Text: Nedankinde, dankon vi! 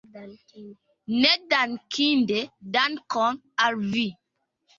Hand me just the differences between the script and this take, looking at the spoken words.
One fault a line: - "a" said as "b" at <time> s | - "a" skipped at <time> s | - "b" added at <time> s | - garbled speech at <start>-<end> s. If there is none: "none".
- "al" added at 3.7 s